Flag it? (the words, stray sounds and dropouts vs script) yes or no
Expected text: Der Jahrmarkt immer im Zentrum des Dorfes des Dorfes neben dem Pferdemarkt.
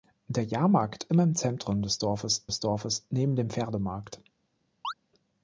yes